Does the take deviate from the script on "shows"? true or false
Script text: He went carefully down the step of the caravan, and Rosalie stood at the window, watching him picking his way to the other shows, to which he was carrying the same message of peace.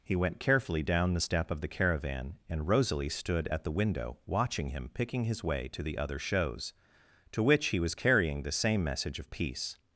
false